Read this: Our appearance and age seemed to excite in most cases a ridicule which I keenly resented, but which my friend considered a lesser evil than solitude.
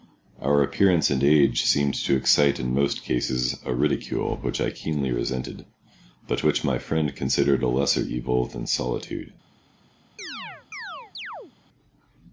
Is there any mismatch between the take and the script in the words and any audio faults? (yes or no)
yes